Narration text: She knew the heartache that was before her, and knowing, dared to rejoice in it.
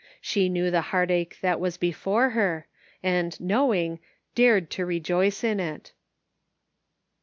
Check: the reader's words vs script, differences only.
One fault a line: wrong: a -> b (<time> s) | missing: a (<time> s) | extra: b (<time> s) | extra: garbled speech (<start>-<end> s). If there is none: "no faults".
no faults